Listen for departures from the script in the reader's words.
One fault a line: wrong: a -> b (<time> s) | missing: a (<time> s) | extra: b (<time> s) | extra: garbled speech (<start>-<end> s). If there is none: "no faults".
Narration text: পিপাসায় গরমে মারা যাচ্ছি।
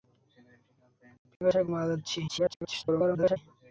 missing: গরমে (1.6 s)
extra: garbled speech (2.3-3.4 s)